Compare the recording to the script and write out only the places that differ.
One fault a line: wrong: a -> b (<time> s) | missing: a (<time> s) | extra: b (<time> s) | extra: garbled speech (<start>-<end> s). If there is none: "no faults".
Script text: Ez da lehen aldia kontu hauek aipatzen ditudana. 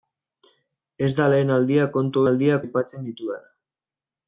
wrong: hauek -> aldia (2.3 s)